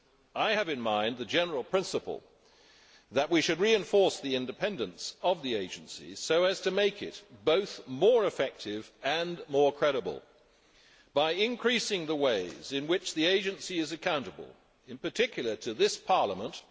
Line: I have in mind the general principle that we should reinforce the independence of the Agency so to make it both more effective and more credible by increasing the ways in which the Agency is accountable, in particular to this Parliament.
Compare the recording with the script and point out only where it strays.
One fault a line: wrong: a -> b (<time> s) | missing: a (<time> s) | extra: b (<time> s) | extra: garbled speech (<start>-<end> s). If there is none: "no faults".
extra: as (6.4 s)